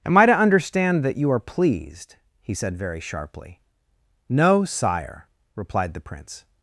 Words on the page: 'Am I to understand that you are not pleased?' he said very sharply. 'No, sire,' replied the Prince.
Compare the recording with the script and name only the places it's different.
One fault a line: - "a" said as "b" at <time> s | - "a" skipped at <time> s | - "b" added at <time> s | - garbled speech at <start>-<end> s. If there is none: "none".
- "not" skipped at 1.4 s